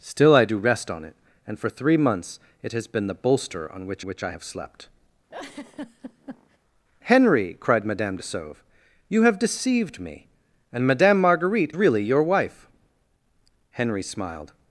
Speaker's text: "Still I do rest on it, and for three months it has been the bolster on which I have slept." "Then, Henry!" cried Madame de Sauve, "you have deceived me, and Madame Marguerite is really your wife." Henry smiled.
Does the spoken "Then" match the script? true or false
false